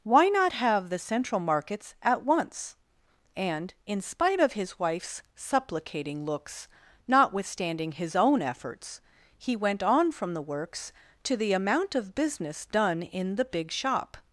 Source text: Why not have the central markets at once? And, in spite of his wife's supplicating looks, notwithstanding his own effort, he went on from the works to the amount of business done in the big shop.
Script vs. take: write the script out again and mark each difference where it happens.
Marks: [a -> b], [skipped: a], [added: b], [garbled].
Why not have the central markets at once? And, in spite of his wife's supplicating looks, notwithstanding his own [effort, -> efforts] he went on from the works to the amount of business done in the big shop.